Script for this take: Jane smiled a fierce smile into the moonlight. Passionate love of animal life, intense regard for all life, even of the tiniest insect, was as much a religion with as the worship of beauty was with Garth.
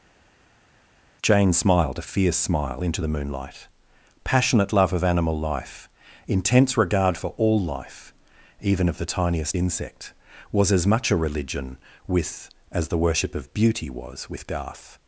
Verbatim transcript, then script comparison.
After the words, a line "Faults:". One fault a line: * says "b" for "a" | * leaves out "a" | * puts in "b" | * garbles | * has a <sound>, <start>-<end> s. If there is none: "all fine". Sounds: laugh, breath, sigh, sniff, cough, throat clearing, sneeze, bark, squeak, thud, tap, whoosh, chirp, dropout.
Jane smiled a fierce smile into the moonlight. Passionate love of animal life, intense regard for all life, even of the tiniest insect, was as much a religion with as the worship of beauty was with Garth.
Faults:
all fine